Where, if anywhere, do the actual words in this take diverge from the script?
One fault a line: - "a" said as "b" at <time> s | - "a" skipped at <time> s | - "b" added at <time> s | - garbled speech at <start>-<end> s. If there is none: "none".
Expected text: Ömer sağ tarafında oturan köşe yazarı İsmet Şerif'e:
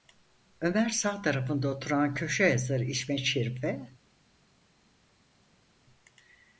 none